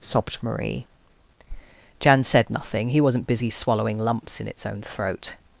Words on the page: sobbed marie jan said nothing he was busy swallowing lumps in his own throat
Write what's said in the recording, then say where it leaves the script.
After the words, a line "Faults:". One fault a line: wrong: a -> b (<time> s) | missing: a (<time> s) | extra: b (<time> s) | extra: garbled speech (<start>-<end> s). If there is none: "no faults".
sobbed marie jan said nothing he wasn't busy swallowing lumps in its own throat
Faults:
wrong: was -> wasn't (3.0 s)
wrong: his -> its (4.5 s)